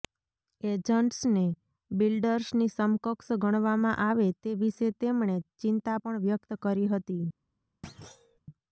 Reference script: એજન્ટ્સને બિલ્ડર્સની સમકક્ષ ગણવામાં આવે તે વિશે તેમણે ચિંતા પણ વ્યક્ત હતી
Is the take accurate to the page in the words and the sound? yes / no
no